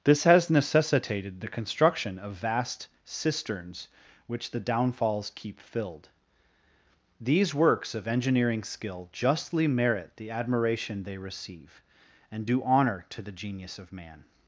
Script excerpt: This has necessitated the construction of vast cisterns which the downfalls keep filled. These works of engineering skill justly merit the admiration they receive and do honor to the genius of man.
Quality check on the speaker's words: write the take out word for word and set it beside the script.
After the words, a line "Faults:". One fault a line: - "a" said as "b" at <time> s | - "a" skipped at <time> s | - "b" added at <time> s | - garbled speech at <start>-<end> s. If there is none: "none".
This has necessitated the construction of vast cisterns which the downfalls keep filled. These works of engineering skill justly merit the admiration they receive and do honor to the genius of man.
Faults:
none